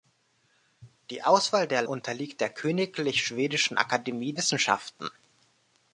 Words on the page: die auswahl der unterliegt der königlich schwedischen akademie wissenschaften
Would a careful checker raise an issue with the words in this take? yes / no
no